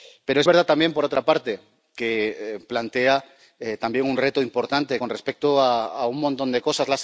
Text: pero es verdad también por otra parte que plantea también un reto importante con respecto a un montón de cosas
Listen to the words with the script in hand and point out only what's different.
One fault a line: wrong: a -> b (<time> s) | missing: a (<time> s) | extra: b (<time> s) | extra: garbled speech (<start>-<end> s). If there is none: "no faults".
no faults